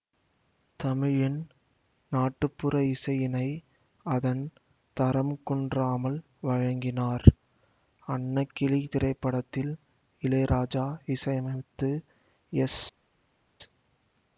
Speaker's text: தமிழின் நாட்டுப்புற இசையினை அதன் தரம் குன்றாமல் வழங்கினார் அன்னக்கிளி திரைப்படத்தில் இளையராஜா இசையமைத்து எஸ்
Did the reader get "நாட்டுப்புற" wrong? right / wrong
right